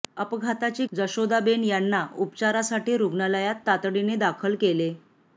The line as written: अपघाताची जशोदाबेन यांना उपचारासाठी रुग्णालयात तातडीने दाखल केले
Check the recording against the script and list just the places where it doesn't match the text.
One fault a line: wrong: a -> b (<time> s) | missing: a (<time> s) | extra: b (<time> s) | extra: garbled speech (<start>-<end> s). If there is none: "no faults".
no faults